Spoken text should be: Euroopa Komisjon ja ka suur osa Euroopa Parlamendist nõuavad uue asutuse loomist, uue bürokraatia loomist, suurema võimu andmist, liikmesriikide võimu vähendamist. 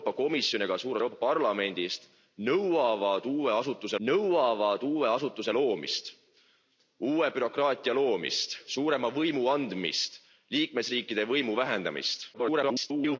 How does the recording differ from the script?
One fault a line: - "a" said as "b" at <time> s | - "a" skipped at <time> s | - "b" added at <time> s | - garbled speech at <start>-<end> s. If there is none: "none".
- "osa" skipped at 1.0 s
- "nõuavad uue asutuse" added at 4.1 s
- garbled speech at 12.3-13.2 s